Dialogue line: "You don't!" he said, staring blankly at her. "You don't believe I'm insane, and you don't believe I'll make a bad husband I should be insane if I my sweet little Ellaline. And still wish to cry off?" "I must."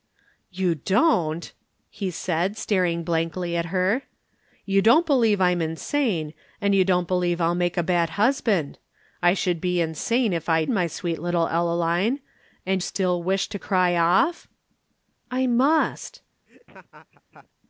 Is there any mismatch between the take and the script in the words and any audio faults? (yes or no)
yes